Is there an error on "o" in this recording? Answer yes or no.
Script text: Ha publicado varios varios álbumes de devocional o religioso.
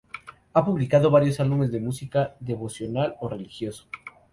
no